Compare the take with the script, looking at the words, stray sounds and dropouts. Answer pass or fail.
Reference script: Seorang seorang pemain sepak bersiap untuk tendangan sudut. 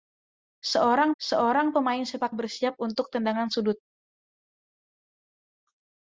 pass